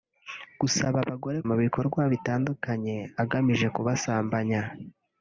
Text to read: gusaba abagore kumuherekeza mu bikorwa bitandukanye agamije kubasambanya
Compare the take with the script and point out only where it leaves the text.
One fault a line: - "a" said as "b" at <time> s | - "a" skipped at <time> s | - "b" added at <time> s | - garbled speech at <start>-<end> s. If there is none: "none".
- "kumuherekeza" skipped at 1.4 s